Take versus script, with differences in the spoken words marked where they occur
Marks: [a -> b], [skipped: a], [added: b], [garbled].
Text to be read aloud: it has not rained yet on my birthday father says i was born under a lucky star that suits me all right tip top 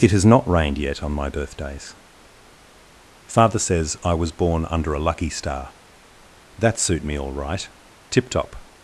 it has not rained yet on my [birthday -> birthdays] father says i was born under a lucky star that [suits -> suit] me all right tip top